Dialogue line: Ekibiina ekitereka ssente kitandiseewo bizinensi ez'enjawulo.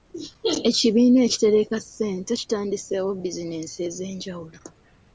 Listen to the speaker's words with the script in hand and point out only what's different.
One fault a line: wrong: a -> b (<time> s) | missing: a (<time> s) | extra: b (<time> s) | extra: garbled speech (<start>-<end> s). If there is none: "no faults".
no faults